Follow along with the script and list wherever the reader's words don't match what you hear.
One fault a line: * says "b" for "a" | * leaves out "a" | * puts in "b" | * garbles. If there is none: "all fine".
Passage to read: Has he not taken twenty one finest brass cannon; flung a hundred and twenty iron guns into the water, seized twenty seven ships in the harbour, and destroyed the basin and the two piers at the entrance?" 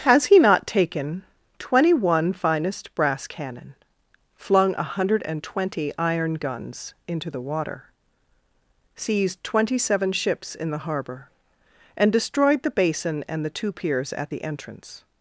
all fine